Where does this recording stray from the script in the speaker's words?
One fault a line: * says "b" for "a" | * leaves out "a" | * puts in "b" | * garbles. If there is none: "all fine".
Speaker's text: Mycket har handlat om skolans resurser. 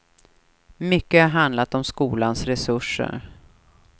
all fine